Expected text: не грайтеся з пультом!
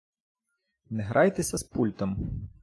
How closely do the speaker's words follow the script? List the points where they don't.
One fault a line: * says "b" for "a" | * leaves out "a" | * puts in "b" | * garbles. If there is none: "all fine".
all fine